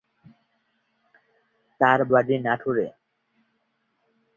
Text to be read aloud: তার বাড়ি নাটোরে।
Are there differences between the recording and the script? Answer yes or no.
no